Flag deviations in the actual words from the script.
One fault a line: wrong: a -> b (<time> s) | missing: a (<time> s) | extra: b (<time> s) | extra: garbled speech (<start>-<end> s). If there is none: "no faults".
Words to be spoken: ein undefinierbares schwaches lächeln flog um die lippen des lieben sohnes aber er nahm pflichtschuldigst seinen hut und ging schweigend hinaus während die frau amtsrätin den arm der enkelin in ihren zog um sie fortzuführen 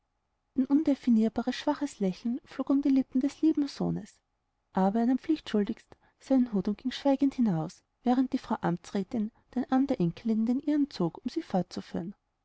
extra: den (10.5 s)